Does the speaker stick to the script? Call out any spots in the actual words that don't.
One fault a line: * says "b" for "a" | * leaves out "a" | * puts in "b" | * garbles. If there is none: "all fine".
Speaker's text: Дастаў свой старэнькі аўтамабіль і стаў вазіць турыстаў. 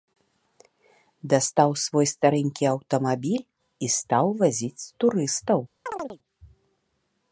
all fine